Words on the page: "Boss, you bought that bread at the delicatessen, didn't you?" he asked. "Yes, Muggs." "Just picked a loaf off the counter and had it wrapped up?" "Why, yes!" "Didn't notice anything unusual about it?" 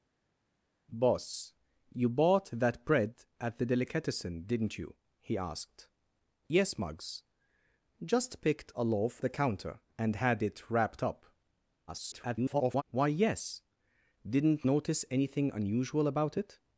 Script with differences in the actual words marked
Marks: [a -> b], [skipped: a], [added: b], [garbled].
"Boss, you bought that bread at the delicatessen, didn't you?" he asked. "Yes, Muggs." "Just picked a loaf [skipped: off] the counter and had it wrapped up?" [garbled] "Why, yes!" "Didn't notice anything unusual about it?"